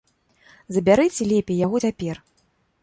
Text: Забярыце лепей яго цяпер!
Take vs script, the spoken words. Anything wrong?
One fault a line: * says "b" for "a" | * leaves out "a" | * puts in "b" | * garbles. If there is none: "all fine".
all fine